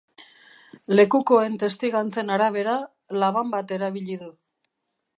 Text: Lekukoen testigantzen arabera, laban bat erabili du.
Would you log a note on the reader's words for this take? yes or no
no